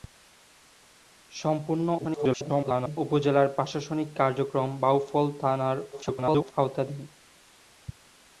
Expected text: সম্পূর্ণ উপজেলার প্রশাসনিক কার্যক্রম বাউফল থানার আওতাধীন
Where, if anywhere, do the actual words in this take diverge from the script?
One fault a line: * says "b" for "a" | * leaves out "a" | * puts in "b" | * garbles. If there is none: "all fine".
* garbles
* garbles